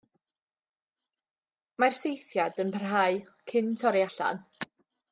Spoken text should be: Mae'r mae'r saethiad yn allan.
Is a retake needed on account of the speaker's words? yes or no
yes